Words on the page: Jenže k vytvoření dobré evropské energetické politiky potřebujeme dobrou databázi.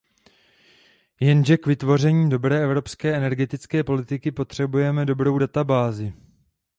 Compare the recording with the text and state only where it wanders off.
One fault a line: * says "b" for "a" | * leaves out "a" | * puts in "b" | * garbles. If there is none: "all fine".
all fine